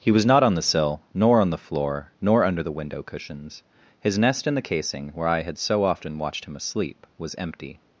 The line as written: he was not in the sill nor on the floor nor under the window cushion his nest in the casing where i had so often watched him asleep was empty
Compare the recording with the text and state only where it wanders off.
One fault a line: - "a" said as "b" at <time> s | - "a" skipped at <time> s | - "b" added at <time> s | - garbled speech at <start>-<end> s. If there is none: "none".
- "in" said as "on" at 0.4 s
- "cushion" said as "cushions" at 3.0 s